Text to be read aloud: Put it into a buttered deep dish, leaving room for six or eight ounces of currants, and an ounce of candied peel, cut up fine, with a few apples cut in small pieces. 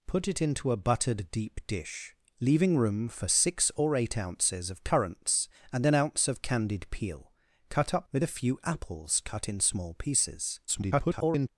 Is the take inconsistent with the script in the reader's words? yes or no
yes